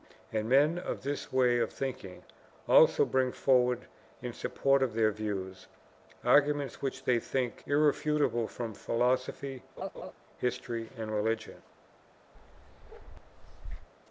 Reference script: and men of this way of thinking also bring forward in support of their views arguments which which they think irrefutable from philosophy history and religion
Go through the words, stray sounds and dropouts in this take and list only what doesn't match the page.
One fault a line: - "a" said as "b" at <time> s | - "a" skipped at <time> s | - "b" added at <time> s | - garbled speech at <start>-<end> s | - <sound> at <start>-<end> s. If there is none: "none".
- "which" skipped at 7.0 s
- laugh at 9.8-10.1 s
- bark at 12.3-13.9 s